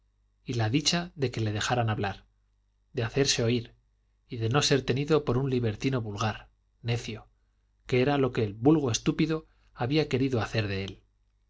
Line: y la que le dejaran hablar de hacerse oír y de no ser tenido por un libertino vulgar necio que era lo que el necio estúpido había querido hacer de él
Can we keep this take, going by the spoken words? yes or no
no